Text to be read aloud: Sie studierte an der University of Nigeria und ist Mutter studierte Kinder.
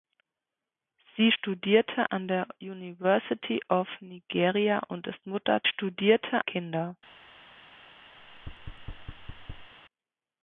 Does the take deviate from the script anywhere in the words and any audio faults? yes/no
yes